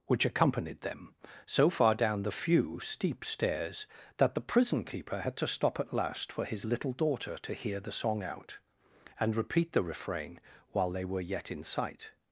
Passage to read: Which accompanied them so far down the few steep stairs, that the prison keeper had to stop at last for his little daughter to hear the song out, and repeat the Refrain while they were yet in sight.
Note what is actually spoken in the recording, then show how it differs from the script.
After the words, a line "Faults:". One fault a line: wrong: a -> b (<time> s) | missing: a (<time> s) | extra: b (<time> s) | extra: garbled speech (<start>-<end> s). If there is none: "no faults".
Which accompanied them so far down the few steep stairs, that the prison keeper had to stop at last for his little daughter to hear the song out, and repeat the Refrain while they were yet in sight.
Faults:
no faults